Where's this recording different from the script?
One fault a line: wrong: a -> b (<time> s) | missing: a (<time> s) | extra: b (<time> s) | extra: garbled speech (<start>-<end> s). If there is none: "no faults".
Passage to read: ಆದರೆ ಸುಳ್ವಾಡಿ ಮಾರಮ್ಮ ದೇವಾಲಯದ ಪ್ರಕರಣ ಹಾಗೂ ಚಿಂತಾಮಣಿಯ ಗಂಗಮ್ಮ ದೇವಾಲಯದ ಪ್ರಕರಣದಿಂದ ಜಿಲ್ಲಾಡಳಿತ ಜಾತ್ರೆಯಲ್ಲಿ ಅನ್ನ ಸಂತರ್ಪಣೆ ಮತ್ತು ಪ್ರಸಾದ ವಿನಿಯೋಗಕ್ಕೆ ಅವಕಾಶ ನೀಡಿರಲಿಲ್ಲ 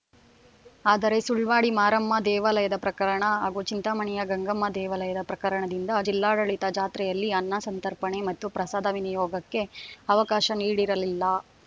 no faults